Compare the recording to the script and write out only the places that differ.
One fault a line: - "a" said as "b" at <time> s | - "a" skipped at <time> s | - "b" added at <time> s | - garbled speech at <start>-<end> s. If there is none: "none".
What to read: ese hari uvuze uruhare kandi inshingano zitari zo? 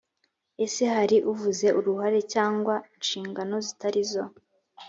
- "kandi" said as "cyangwa" at 2.3 s